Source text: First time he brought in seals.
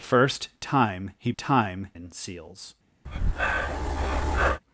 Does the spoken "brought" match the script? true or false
false